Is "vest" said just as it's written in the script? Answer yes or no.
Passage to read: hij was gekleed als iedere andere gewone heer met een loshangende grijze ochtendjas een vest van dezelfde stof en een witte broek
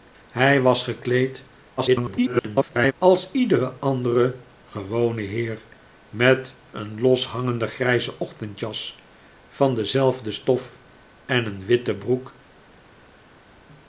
no